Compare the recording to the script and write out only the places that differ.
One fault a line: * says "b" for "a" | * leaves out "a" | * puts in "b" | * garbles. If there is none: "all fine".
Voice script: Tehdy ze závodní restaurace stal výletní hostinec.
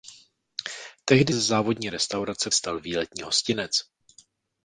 all fine